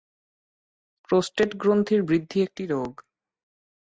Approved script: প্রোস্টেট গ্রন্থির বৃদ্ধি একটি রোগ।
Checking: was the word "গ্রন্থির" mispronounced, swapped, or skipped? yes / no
no